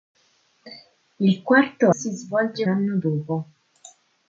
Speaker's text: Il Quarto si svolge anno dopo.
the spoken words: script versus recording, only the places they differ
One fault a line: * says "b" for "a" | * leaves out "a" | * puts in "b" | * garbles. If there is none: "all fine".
all fine